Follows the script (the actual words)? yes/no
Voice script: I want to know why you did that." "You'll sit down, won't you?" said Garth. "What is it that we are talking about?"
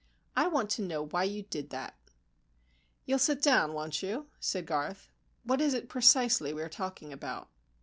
no